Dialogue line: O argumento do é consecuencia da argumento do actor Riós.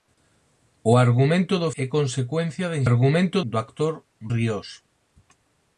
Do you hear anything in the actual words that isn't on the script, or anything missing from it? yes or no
no